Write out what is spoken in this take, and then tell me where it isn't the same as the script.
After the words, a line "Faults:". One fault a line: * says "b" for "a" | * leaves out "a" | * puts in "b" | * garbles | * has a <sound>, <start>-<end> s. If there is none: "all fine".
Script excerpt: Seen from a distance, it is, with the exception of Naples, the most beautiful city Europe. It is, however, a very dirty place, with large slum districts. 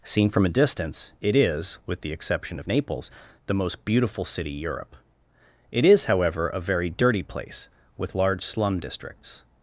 Seen from a distance, it is, with the exception of Naples, the most beautiful city Europe. It is, however, a very dirty place, with large slum districts.
Faults:
all fine